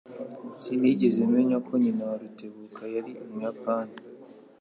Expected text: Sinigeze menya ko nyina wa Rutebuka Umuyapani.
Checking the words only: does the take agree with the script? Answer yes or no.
no